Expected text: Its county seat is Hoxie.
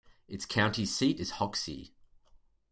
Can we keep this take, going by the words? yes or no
yes